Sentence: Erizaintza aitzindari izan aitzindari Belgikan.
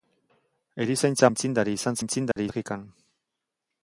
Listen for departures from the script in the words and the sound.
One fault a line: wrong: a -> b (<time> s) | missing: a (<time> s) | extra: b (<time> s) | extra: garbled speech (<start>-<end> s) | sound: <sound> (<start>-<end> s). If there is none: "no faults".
sound: dropout (2.3-2.4 s)